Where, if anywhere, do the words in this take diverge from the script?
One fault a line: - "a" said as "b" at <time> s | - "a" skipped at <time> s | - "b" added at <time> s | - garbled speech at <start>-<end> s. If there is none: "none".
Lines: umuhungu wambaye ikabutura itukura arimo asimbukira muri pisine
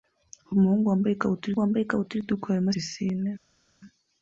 - "wambaye ikabutura" added at 1.6 s
- "asimbukira muri" skipped at 2.7 s